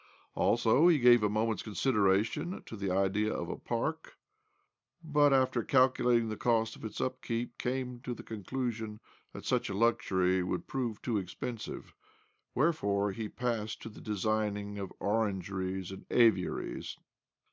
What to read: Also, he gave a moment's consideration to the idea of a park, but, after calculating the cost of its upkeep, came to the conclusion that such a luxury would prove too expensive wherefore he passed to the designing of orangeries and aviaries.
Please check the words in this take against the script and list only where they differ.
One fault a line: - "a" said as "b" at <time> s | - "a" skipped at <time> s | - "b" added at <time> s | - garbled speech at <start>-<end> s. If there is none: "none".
none